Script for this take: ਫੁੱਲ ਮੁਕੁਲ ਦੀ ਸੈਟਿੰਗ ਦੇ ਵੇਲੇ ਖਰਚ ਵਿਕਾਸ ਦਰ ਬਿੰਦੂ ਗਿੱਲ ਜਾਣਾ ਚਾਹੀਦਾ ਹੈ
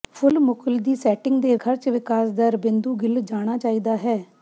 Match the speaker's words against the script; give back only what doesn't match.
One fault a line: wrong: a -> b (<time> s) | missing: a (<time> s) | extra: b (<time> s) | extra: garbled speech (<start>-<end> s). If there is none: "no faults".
missing: ਵੇਲੇ (1.6 s)